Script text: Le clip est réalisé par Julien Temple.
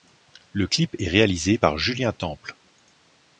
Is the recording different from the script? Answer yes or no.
no